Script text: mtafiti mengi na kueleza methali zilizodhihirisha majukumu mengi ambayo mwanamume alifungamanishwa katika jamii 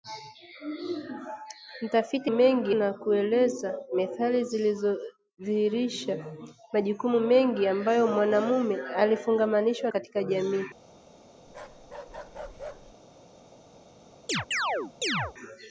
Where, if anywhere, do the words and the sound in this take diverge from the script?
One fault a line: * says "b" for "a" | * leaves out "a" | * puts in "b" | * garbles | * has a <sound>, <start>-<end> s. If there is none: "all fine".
* has a bark, 11.5-13.0 s
* has a chirp, 14.3-15.3 s